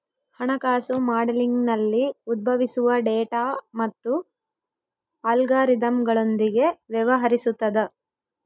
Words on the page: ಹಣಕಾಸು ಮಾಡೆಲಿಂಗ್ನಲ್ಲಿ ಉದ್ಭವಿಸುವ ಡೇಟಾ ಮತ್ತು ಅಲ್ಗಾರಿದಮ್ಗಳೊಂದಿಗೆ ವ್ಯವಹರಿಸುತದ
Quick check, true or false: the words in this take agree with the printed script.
true